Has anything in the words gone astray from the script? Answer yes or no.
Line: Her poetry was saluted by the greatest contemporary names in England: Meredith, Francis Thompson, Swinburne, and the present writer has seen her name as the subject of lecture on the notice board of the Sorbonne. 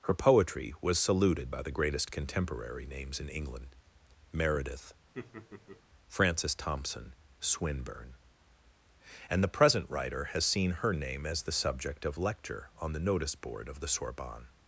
no